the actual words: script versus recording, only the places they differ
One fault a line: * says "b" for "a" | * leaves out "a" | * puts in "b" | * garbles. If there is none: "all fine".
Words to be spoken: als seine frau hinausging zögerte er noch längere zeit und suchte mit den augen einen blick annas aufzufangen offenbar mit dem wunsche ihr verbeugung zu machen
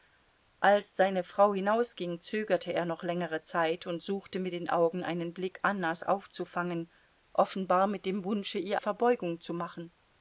all fine